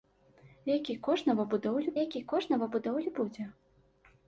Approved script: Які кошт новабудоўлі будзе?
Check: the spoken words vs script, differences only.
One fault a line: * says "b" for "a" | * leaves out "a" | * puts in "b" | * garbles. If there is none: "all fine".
* puts in "які кошт новабудоўлі"